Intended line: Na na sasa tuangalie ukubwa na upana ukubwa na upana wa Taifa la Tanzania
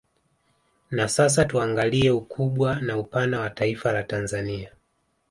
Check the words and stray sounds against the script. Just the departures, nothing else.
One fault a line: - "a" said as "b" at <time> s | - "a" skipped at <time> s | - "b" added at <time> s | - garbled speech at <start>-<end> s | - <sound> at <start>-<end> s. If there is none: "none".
- "na" skipped at 1.1 s
- "ukubwa na upana" skipped at 3.4 s